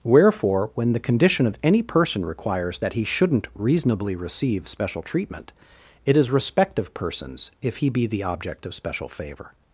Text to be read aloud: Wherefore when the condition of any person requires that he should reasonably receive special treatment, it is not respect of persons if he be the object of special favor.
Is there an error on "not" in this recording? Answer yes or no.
yes